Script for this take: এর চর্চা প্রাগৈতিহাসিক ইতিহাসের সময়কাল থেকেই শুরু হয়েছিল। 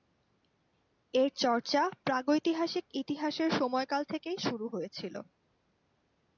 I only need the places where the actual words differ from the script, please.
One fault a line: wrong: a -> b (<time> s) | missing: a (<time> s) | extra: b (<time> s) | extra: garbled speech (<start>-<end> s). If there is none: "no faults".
no faults